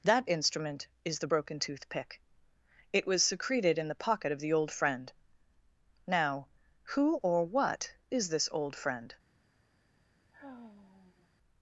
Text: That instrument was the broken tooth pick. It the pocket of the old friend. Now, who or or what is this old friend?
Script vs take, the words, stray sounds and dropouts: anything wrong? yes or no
yes